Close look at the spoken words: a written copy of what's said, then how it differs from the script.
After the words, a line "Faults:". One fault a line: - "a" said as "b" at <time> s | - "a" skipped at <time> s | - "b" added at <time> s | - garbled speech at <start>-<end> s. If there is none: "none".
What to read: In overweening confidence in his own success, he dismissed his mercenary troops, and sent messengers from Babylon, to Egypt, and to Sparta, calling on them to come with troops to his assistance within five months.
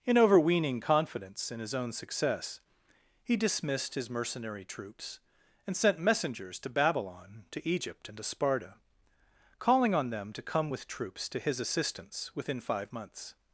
In overweening confidence in his own success, he dismissed his mercenary troops, and sent messengers to Babylon, to Egypt, and to Sparta, calling on them to come with troops to his assistance within five months.
Faults:
- "from" said as "to" at 6.6 s